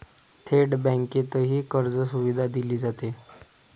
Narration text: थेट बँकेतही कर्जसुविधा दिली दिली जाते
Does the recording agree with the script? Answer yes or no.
no